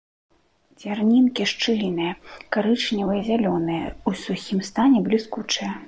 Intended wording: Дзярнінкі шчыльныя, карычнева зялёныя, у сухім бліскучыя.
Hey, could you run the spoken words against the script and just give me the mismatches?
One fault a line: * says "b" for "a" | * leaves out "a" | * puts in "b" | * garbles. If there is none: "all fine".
* puts in "стане"